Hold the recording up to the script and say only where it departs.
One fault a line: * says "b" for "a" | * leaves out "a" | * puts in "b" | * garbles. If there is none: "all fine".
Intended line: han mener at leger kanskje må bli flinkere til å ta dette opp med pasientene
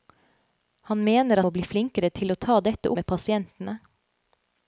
* leaves out "at leger kanskje"
* leaves out "opp"